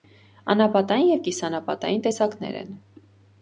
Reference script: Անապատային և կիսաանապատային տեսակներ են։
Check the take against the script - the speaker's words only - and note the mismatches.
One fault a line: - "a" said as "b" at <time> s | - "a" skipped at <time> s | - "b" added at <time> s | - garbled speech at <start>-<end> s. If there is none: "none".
none